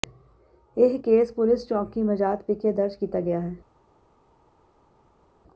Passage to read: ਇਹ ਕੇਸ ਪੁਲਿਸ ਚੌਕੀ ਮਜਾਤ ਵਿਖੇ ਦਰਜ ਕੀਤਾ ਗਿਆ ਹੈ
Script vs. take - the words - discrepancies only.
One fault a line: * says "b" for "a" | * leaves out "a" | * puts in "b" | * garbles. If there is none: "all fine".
all fine